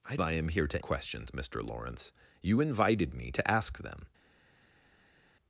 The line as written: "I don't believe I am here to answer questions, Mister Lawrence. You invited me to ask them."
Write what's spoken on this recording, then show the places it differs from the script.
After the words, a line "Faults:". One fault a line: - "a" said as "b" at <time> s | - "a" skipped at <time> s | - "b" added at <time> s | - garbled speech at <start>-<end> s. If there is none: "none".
"I I am here to questions, Mister Lawrence. You invited me to ask them."
Faults:
- "don't believe" skipped at 0.2 s
- "answer" skipped at 0.8 s